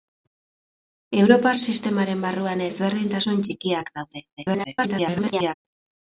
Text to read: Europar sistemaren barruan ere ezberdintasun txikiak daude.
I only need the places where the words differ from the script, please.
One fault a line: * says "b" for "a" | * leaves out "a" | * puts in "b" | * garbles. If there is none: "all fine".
* leaves out "ere"
* garbles